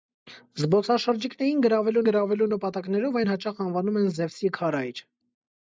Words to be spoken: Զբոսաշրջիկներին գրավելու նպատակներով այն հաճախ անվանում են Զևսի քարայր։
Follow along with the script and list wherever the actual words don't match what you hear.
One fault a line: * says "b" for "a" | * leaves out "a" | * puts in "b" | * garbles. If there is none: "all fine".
* puts in "գրավելու"